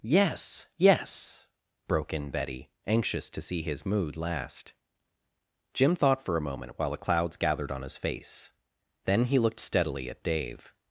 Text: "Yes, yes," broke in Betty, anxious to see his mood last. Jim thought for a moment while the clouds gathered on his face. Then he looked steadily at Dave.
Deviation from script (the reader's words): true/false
false